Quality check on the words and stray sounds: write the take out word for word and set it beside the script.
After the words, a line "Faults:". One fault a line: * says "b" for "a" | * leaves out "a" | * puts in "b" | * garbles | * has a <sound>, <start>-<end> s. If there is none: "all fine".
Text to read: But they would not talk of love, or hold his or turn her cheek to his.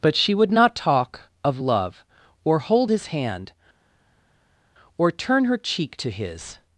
But she would not talk of love, or hold his hand, or turn her cheek to his.
Faults:
* says "she" for "they"
* puts in "hand"